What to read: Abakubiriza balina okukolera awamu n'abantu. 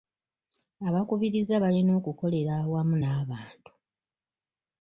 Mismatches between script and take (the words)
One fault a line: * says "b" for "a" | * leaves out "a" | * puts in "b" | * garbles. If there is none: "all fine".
all fine